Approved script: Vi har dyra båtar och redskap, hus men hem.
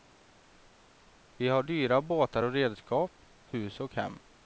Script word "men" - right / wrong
wrong